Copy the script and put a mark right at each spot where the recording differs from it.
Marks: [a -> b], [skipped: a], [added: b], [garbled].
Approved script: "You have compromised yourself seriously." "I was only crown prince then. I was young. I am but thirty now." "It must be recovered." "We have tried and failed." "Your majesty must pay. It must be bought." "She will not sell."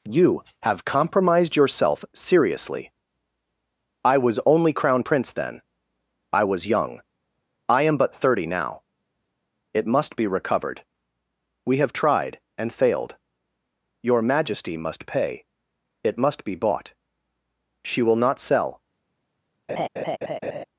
"You have compromised yourself seriously." "I was only crown prince then. I was young. I am but thirty now." "It must be recovered." "We have tried and failed." "Your majesty must pay. It must be bought." "She will not sell."